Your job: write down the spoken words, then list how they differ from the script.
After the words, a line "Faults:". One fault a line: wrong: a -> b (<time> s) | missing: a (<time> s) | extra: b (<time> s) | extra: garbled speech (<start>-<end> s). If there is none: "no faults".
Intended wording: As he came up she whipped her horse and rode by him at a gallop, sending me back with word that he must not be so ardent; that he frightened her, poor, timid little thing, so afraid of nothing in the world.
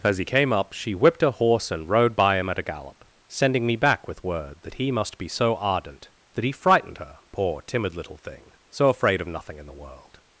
As he came up she whipped her horse and rode by him at a gallop, sending me back with word that he must be so ardent; that he frightened her, poor, timid little thing, so afraid of nothing in the world.
Faults:
missing: not (5.2 s)